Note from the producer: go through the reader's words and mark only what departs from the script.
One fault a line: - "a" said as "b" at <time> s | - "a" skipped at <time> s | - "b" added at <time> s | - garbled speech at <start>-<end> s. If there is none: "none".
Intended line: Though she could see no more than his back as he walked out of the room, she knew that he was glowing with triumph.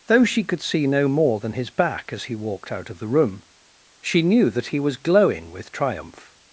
none